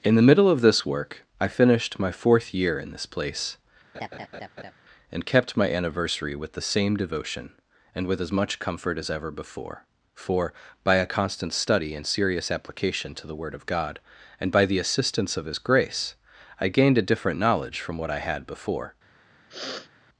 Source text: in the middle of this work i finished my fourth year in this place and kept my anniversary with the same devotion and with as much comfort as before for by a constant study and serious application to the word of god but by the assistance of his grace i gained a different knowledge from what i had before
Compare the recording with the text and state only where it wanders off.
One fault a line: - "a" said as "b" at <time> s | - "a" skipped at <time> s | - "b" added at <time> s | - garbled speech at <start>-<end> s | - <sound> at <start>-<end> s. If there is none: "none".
- laugh at 3.9-4.7 s
- "ever" added at 9.1 s
- "but" said as "and" at 14.4 s
- sniff at 19.5-19.9 s